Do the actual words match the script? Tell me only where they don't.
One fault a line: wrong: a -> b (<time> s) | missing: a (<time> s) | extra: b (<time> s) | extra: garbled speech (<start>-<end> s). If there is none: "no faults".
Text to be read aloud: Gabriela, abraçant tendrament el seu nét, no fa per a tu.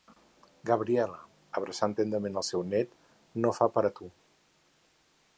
no faults